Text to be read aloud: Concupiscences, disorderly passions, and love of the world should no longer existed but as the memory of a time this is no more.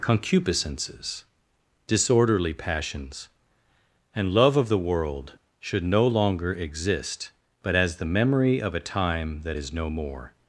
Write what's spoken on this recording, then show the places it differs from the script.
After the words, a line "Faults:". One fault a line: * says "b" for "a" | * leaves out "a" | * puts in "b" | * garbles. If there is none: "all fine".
Concupiscences, disorderly passions, and love of the world should no longer exist but as the memory of a time that is no more.
Faults:
* says "exist" for "existed"
* says "that" for "this"